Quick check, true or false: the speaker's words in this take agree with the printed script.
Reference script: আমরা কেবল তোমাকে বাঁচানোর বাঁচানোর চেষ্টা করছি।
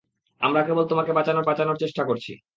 true